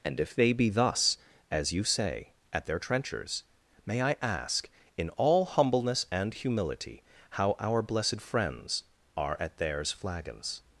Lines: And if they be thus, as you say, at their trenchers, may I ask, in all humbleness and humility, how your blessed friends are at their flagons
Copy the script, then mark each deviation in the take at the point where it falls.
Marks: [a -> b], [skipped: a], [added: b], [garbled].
And if they be thus, as you say, at their trenchers, may I ask, in all humbleness and humility, how [your -> our] blessed friends are at [their -> theirs] flagons